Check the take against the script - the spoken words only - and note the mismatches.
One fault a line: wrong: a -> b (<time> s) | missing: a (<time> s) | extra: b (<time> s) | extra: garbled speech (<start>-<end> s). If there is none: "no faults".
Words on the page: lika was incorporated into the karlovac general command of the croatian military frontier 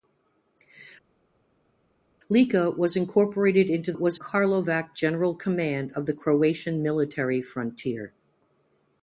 wrong: the -> was (3.9 s)